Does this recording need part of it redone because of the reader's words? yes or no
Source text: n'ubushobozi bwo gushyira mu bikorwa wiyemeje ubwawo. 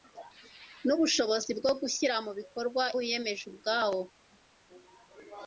no